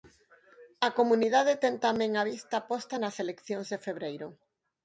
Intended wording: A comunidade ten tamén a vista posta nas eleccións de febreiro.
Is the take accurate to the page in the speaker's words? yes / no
yes